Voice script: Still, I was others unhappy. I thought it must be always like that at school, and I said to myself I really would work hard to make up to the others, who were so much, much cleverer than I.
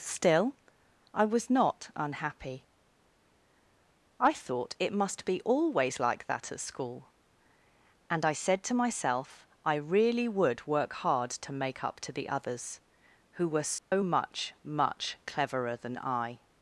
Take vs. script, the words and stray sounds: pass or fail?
fail